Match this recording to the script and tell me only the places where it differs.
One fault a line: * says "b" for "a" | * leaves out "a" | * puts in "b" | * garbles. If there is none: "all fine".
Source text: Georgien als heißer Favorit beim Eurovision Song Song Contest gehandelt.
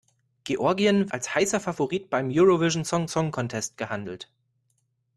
all fine